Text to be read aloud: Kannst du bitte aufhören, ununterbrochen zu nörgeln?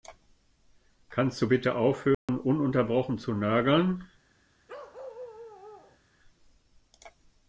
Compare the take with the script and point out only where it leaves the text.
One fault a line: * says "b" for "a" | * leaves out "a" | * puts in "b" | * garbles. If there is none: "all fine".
all fine